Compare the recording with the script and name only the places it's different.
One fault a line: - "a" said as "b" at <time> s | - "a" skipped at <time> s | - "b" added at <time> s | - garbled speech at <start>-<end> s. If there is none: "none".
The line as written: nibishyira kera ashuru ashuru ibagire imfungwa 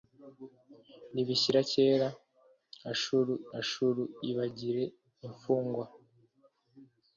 none